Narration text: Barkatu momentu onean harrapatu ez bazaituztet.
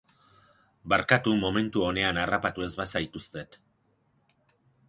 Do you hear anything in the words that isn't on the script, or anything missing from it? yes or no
no